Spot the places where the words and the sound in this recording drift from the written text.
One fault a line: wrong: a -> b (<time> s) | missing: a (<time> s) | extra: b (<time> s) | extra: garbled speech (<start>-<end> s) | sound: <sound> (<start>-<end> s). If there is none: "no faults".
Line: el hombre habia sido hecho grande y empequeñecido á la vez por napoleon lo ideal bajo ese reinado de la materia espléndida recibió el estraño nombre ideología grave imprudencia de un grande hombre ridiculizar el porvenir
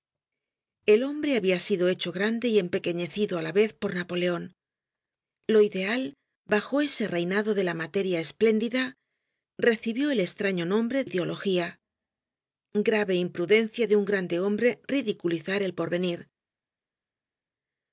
no faults